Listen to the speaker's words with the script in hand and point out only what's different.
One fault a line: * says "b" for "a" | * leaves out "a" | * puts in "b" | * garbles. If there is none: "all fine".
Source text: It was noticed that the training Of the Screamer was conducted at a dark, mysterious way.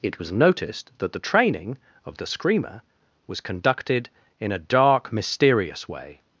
* says "in" for "at"